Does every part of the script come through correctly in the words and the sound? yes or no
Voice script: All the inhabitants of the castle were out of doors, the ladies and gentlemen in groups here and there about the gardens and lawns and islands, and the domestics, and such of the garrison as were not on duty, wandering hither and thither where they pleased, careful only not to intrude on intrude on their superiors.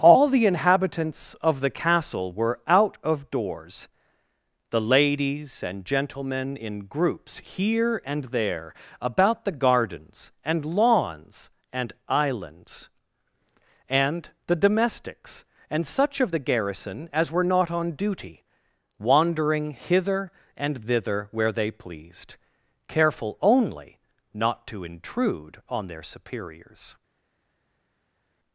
no